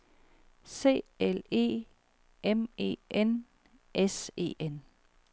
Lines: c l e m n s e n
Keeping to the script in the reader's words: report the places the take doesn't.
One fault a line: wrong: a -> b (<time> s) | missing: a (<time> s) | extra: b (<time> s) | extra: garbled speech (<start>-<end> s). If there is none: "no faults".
extra: e (2.8 s)